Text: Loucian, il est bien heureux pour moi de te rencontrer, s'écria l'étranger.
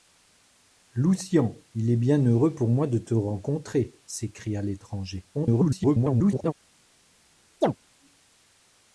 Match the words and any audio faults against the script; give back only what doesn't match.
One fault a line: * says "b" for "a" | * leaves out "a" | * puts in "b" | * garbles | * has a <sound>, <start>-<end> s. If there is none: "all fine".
* garbles
* has a chirp, 7.6-7.8 s